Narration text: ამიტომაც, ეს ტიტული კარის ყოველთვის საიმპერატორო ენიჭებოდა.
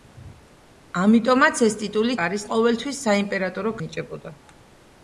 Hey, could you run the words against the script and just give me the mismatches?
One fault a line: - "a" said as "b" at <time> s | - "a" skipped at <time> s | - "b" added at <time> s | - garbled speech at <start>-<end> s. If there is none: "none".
none